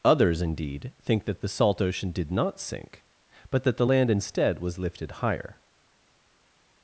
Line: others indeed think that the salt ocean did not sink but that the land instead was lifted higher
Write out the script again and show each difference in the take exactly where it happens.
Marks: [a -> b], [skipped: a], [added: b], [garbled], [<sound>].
others indeed think that the salt ocean did not sink but that the land instead was lifted higher